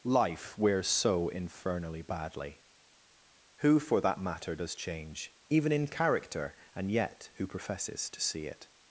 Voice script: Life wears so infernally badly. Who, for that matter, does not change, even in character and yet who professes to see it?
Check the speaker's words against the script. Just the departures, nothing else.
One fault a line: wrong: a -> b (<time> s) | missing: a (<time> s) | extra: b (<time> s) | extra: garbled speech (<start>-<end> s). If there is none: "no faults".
missing: not (4.7 s)